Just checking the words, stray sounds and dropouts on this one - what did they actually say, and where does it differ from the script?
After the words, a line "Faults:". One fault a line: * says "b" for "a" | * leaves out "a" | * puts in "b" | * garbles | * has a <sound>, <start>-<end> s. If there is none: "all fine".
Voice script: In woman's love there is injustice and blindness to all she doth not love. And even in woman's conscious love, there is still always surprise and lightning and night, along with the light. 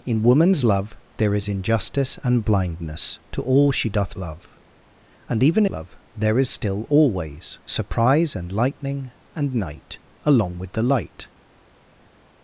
In woman's love there is injustice and blindness to all she doth love. And even love, there is still always surprise and lightning and night, along with the light.
Faults:
* leaves out "not"
* leaves out "in woman's conscious"